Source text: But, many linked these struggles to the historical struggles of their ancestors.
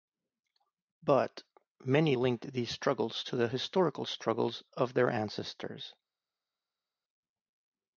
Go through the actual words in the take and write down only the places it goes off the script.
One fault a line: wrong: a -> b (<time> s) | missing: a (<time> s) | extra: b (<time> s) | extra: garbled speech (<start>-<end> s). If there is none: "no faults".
no faults